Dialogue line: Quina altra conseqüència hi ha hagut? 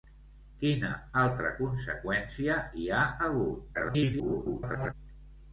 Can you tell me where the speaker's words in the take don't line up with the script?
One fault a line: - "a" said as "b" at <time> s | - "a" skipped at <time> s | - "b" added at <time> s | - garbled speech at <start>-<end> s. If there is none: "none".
- garbled speech at 3.7-4.9 s